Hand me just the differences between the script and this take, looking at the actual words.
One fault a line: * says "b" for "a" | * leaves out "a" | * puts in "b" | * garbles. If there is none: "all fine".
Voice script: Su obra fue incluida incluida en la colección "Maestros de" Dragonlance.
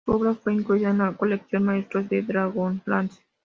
* leaves out "incluida"